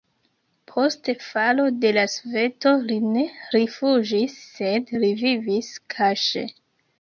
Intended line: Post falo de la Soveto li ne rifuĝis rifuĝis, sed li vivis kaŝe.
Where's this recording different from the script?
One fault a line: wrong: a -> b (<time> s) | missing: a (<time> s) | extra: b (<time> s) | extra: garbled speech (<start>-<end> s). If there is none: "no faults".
missing: rifuĝis (4.4 s)